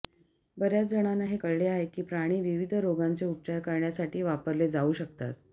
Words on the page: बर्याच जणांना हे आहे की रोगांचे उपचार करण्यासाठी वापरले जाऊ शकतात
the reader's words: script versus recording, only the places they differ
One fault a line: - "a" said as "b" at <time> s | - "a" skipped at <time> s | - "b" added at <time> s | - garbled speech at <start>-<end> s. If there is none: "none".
- "कळले" added at 1.3 s
- "प्राणी विविध" added at 2.0 s